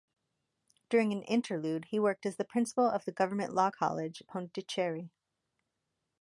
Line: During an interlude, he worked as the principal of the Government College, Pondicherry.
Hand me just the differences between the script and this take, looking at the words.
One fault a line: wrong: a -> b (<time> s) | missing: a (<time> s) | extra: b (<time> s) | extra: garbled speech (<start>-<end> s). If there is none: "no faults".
extra: Law (3.5 s)